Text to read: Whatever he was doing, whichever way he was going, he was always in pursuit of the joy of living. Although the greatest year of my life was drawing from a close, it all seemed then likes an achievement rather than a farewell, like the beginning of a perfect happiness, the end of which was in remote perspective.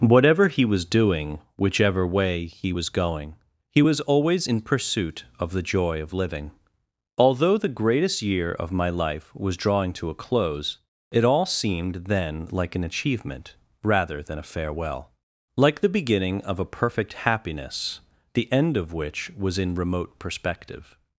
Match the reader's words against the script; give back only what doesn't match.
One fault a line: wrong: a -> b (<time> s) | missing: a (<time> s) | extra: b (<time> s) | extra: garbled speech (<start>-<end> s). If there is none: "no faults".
wrong: from -> to (9.9 s)
wrong: likes -> like (12.5 s)